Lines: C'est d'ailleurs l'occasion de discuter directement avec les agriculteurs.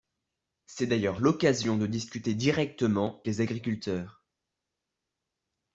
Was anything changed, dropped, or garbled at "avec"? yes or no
yes